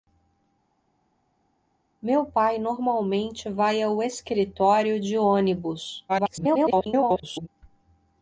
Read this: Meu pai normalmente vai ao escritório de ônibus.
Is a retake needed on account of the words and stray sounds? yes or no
yes